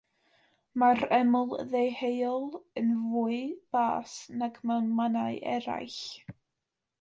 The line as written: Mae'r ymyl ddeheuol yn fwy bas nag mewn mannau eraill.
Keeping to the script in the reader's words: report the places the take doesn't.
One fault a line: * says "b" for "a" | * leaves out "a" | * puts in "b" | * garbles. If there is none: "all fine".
all fine